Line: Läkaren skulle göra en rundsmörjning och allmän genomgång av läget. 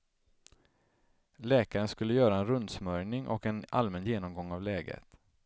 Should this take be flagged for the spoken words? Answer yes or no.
yes